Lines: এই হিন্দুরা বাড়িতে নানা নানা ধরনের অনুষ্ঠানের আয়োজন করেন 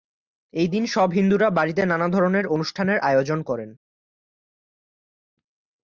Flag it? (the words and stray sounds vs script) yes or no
yes